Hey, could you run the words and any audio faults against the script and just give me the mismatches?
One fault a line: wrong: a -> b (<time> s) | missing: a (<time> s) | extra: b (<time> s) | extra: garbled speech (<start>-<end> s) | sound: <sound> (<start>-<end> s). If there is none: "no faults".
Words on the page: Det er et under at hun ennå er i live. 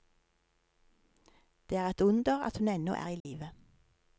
sound: dropout (3.2-3.3 s)